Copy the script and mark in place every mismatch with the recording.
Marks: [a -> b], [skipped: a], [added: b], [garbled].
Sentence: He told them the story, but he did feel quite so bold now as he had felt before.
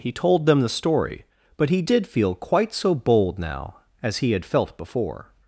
He told them the story, but he did feel quite so bold now as he had felt before.